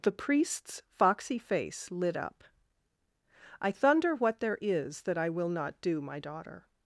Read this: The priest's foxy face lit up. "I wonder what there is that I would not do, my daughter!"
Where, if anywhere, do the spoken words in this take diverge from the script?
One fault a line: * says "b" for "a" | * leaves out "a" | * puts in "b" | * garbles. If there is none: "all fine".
* says "thunder" for "wonder"
* says "will" for "would"